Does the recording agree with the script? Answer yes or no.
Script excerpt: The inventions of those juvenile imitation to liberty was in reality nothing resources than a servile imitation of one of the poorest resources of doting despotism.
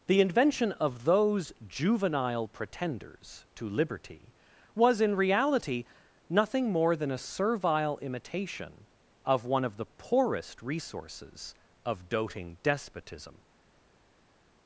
no